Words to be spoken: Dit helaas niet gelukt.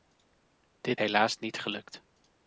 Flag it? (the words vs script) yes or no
no